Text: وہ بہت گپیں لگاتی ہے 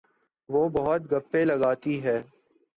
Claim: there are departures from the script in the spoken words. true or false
false